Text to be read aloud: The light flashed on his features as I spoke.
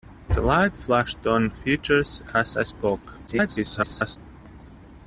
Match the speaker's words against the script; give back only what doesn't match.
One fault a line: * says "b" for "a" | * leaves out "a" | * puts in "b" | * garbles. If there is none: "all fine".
* leaves out "his"
* garbles